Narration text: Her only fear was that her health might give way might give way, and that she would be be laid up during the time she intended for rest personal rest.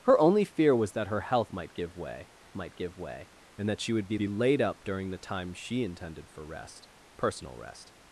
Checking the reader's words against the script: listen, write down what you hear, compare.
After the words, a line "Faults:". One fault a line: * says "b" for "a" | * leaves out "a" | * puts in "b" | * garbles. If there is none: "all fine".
Her only fear was that her health might give way might give way, and that she would be be laid up during the time she intended for rest personal rest.
Faults:
all fine